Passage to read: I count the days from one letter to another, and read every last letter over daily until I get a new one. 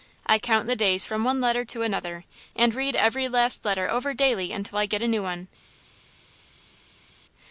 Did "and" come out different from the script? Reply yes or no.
no